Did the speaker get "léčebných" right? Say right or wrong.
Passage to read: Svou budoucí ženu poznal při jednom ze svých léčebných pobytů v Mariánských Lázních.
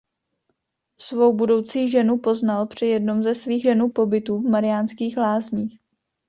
wrong